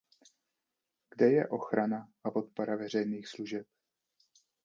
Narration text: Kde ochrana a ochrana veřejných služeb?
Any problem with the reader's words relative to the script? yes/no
yes